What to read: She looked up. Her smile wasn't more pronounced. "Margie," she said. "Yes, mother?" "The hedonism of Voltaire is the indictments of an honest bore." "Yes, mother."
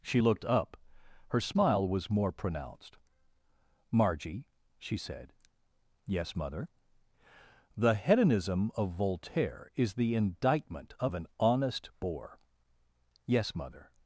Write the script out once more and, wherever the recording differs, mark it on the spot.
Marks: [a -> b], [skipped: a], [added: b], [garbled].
She looked up. Her smile [wasn't -> was] more pronounced. "Margie," she said. "Yes, mother?" "The hedonism of Voltaire is the [indictments -> indictment] of an honest bore." "Yes, mother."